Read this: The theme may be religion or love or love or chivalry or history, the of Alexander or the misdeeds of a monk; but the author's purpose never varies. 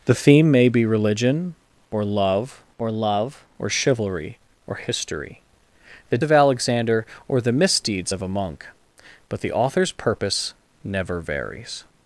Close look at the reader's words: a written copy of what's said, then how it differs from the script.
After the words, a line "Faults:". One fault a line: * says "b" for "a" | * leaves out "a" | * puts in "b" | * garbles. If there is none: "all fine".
The theme may be religion or love or love or chivalry or history, the of Alexander or the misdeeds of a monk; but the author's purpose never varies.
Faults:
all fine